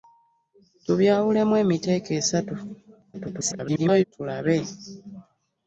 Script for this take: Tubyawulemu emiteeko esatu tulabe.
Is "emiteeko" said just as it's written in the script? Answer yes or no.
yes